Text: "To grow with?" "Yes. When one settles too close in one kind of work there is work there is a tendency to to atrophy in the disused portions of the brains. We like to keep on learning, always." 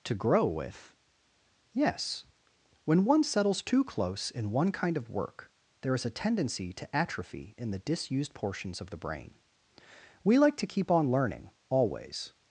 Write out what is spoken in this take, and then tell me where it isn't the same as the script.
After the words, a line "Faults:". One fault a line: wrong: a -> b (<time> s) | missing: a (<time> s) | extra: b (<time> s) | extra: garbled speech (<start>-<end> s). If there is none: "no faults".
"To grow with?" "Yes. When one settles too close in one kind of work there is a tendency to atrophy in the disused portions of the brain. We like to keep on learning, always."
Faults:
missing: work there is (6.1 s)
missing: to (7.0 s)
wrong: brains -> brain (9.0 s)